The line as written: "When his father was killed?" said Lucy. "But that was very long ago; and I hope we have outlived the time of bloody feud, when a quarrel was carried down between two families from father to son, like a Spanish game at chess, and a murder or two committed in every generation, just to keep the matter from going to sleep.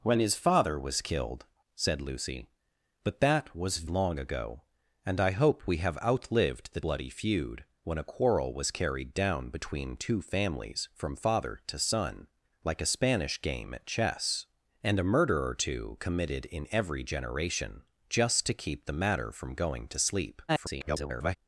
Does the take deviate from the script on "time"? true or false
true